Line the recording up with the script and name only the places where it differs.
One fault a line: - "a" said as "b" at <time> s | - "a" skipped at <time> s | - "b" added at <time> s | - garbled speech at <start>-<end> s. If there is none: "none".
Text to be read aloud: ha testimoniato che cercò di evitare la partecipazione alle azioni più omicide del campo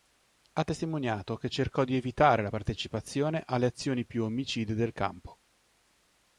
none